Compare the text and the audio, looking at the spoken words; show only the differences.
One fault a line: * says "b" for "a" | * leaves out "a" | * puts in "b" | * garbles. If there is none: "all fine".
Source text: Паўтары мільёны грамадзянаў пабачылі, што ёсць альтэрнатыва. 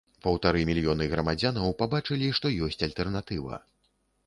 all fine